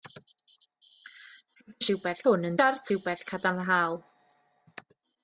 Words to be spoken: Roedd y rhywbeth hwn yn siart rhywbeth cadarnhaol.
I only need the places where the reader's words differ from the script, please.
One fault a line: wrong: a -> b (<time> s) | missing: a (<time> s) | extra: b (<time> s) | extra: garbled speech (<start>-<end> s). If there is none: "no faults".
no faults